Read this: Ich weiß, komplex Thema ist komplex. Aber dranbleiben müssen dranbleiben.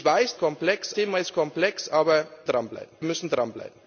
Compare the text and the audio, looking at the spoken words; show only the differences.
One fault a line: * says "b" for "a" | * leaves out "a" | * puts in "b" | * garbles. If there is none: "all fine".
all fine